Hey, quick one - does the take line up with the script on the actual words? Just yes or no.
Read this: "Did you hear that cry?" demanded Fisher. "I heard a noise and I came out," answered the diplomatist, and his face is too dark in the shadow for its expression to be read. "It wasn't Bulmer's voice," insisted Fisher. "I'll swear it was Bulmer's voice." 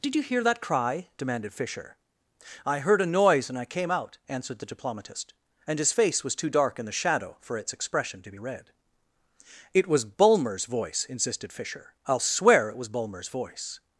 no